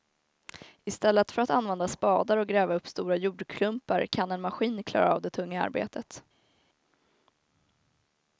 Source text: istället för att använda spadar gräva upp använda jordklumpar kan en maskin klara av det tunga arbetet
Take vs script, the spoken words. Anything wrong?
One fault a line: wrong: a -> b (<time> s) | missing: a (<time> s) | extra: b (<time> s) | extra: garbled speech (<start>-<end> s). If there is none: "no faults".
extra: och (2.4 s)
wrong: använda -> stora (2.9 s)